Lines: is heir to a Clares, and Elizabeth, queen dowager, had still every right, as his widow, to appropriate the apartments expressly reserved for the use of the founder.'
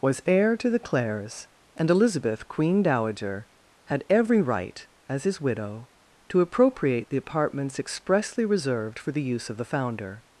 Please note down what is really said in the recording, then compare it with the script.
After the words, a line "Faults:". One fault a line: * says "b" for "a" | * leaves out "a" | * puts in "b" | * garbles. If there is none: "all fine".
was heir to the Clares, and Elizabeth, queen dowager, had every right, as his widow, to appropriate the apartments expressly reserved for the use of the founder.'
Faults:
* says "was" for "is"
* says "the" for "a"
* leaves out "still"